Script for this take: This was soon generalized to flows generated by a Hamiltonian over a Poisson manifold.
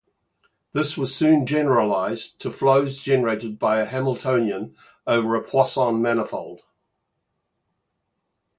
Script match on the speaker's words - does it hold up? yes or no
yes